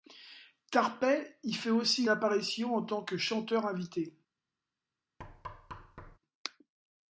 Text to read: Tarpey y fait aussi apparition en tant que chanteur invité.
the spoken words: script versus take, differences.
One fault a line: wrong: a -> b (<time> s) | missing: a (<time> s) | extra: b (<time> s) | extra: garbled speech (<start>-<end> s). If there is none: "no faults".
no faults